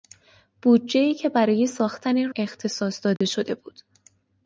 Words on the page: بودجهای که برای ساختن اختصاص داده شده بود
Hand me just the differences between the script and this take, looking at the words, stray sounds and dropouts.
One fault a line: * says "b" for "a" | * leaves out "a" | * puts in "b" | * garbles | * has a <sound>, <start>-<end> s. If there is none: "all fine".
* has a dropout, 3.2-3.2 s